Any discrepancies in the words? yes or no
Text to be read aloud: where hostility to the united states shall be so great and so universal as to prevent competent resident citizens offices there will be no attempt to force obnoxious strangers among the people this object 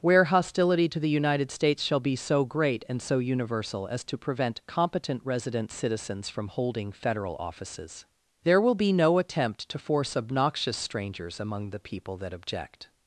yes